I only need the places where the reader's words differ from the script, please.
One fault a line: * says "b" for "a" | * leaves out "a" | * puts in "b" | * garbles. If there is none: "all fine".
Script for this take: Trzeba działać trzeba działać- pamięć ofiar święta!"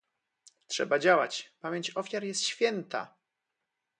* leaves out "trzeba działać"
* puts in "jest"